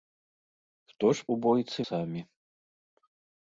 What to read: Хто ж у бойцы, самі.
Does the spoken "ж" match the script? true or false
true